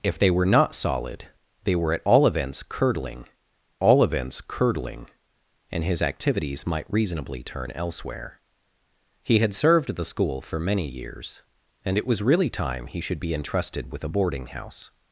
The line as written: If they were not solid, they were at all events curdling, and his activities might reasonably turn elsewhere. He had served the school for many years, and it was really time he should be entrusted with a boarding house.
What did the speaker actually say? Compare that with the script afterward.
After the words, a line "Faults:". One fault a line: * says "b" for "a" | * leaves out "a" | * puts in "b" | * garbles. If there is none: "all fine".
If they were not solid, they were at all events curdling all events curdling, and his activities might reasonably turn elsewhere. He had served the school for many years, and it was really time he should be entrusted with a boarding house.
Faults:
* puts in "all events curdling"